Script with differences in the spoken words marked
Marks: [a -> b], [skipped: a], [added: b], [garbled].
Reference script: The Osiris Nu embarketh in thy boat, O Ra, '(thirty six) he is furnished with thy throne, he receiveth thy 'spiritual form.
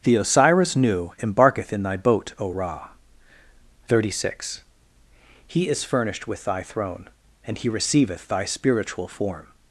The Osiris Nu embarketh in thy boat, O Ra, '(thirty six) he is furnished with thy throne, [added: and] he receiveth thy 'spiritual form.